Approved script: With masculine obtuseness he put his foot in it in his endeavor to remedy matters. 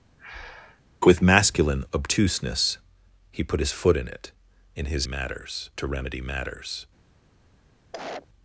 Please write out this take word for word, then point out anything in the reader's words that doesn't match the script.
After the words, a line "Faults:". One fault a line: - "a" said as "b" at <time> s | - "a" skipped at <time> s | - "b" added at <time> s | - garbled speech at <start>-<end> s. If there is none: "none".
With masculine obtuseness he put his foot in it in his matters to remedy matters.
Faults:
- "endeavor" said as "matters" at 5.0 s